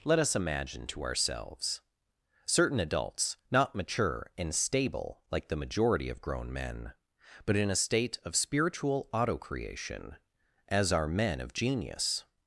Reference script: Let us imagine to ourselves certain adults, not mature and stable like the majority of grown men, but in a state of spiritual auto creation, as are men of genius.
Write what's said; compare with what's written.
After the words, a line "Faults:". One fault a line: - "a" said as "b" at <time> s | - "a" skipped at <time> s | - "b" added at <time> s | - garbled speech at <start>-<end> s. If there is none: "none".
Let us imagine to ourselves certain adults, not mature and stable like the majority of grown men, but in a state of spiritual auto creation, as are men of genius.
Faults:
none